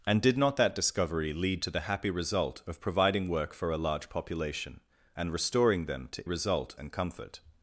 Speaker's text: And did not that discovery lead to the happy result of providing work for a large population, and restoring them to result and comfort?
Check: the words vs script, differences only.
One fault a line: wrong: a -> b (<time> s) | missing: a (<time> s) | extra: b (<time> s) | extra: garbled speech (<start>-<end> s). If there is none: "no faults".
no faults